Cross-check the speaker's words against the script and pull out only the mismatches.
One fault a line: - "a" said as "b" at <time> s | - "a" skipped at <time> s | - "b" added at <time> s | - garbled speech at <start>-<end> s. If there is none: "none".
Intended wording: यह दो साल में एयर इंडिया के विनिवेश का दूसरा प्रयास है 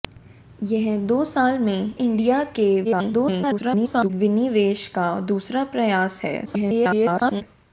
- "एयर" skipped at 1.9 s
- garbled speech at 2.8-4.1 s
- garbled speech at 6.5-7.4 s